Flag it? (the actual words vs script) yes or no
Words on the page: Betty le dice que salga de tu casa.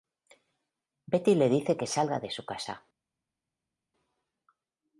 yes